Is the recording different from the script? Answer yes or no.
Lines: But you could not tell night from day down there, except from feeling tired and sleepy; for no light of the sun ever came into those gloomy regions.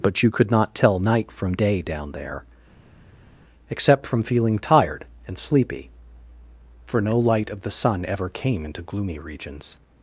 yes